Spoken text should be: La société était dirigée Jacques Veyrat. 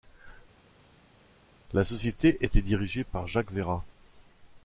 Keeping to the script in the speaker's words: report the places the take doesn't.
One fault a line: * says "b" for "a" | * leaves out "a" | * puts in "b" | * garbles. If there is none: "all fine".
* puts in "par"